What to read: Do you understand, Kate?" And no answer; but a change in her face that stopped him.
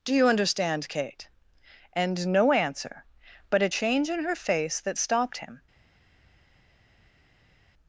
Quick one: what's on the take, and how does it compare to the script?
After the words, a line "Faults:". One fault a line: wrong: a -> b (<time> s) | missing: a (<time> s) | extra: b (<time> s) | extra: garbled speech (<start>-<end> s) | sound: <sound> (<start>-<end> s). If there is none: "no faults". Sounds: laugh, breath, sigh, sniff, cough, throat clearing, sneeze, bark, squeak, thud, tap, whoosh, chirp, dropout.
Do you understand, Kate?" And no answer; but a change in her face that stopped him.
Faults:
no faults